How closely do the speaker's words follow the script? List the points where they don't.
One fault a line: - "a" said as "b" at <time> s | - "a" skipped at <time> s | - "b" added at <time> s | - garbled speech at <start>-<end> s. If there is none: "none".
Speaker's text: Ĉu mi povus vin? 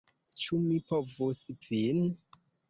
none